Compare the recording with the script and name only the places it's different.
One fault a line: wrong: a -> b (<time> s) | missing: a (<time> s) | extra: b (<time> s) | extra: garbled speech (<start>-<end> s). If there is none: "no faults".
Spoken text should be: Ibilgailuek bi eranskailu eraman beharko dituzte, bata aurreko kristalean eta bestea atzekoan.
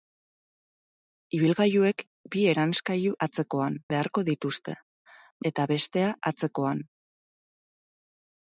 wrong: eraman -> atzekoan (3.3 s)
missing: bata aurreko kristalean (4.8 s)